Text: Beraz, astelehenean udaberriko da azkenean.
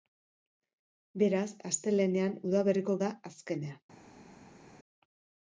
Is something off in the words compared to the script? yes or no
no